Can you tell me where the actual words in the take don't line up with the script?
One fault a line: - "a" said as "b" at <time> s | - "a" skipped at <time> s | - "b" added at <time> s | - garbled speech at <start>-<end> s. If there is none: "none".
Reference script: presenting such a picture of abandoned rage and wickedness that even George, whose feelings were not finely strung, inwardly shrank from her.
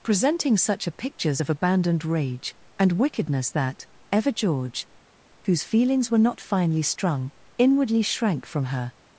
- "picture" said as "pictures" at 0.9 s
- "even" said as "ever" at 4.1 s